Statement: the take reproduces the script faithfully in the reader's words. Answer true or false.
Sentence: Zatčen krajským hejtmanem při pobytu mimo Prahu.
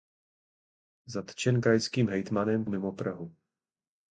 false